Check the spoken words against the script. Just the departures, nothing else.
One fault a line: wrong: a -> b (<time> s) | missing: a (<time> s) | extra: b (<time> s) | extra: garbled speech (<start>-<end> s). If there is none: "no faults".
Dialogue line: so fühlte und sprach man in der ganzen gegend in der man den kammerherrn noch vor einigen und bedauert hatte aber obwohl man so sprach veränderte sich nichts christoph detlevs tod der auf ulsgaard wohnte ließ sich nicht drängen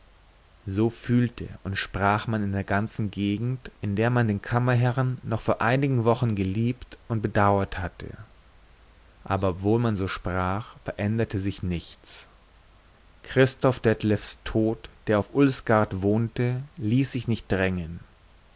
extra: wochen geliebt (6.0 s)